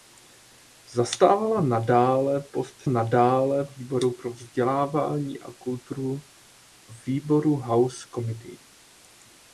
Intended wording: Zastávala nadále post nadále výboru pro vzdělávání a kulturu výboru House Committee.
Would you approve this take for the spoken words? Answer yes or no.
yes